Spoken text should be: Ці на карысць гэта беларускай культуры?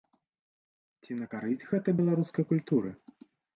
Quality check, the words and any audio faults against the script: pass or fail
pass